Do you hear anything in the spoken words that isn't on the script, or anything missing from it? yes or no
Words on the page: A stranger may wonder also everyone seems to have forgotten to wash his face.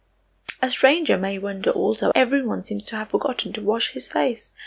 no